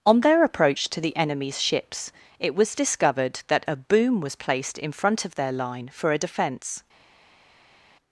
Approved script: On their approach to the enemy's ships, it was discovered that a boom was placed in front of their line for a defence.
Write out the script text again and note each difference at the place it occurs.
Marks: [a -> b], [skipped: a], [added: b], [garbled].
On their approach to the enemy's ships, it was discovered that a boom was placed in front of their line for a defence.